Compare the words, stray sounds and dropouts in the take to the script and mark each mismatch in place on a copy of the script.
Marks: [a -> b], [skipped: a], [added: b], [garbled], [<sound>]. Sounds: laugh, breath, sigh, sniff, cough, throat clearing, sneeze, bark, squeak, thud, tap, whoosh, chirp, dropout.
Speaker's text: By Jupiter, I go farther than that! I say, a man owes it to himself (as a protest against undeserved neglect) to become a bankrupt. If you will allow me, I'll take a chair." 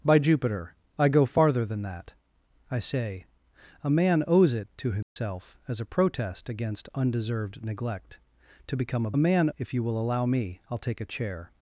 By Jupiter, I go farther than that! I say, a man owes it to himself [dropout] (as a protest against undeserved neglect) to become a [bankrupt. -> man] If you will allow me, I'll take a chair."